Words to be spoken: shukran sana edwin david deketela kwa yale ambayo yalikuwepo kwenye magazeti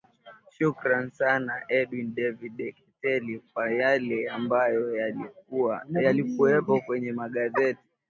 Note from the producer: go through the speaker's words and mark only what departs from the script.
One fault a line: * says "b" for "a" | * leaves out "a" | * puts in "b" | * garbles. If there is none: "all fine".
all fine